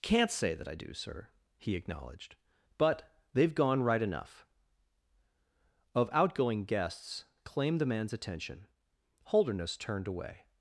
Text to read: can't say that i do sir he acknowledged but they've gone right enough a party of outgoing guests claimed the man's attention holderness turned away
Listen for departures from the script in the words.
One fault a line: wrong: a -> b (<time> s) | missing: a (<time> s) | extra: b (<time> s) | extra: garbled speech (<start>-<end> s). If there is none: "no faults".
missing: a party (4.5 s)